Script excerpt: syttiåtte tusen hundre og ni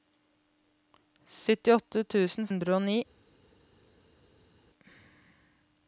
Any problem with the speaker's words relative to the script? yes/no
no